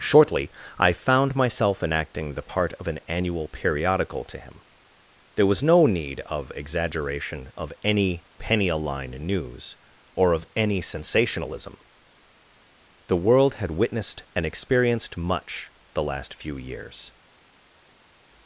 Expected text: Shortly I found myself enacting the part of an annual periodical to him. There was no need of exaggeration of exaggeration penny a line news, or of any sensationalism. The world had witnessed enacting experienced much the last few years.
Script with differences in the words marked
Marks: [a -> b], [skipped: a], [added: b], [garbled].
Shortly I found myself enacting the part of an annual periodical to him. There was no need of exaggeration of [exaggeration -> any] penny a line news, or of any sensationalism. The world had witnessed [enacting -> and] experienced much the last few years.